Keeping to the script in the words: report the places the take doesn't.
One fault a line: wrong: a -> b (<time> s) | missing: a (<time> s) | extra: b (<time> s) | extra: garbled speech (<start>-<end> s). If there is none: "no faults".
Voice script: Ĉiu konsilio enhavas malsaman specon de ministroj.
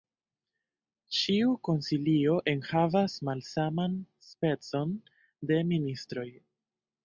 no faults